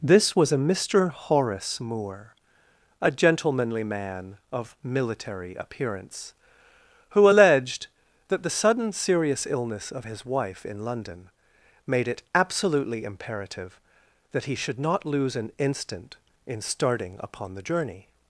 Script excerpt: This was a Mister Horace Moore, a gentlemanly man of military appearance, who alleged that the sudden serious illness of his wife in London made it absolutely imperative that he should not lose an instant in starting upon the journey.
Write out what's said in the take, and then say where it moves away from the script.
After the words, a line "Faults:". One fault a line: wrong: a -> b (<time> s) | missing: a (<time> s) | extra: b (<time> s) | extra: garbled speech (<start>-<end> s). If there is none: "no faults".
This was a Mister Horace Moore, a gentlemanly man of military appearance, who alleged that the sudden serious illness of his wife in London made it absolutely imperative that he should not lose an instant in starting upon the journey.
Faults:
no faults